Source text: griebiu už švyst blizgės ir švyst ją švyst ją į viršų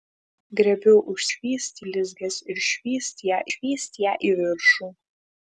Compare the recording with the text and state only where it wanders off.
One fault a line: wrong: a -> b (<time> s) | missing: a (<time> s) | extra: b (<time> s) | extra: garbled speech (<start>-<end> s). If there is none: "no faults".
no faults